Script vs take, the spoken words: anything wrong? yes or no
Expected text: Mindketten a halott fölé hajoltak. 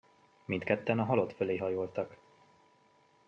no